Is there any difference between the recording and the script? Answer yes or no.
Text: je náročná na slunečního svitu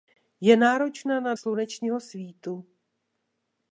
no